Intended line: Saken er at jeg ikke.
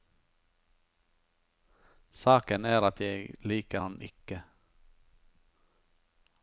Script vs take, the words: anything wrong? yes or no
yes